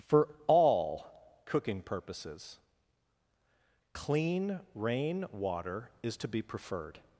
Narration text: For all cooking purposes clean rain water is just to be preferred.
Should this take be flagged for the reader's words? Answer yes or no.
yes